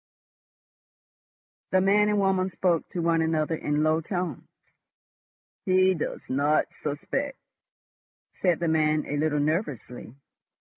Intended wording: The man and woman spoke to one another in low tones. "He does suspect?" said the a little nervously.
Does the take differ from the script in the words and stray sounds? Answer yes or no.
yes